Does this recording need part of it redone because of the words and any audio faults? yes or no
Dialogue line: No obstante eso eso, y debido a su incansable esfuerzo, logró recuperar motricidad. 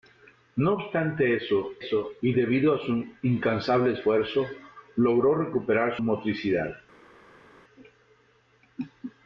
no